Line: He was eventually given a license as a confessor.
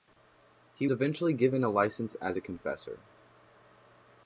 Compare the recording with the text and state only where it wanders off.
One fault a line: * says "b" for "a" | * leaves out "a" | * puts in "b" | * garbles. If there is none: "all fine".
* leaves out "was"